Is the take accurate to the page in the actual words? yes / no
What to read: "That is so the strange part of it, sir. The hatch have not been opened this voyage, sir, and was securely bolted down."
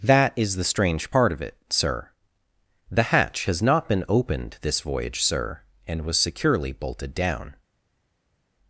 no